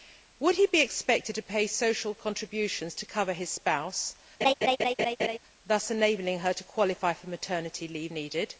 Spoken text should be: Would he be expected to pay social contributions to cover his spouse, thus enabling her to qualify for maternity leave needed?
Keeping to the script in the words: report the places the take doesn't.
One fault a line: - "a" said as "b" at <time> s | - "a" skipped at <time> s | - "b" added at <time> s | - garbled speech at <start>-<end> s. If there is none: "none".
none